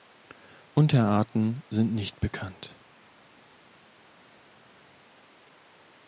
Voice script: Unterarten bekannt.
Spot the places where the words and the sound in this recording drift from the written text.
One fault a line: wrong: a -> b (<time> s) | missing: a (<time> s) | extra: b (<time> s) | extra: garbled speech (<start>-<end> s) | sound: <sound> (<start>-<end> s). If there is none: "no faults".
extra: sind nicht (1.7 s)